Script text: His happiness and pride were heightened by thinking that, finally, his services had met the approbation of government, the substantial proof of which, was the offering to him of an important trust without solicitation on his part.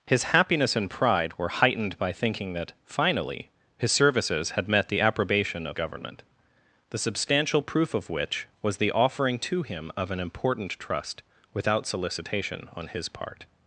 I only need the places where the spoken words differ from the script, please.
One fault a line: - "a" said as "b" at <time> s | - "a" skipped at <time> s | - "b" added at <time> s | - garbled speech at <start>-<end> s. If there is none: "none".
none